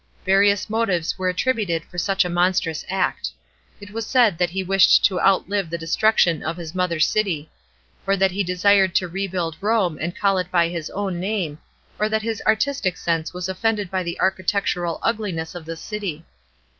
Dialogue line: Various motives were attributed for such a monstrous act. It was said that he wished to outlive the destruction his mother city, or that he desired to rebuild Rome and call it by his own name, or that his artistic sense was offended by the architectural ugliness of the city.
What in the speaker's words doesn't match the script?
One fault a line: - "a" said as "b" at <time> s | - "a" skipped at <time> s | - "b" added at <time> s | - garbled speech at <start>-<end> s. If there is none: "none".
- "of" added at 6.4 s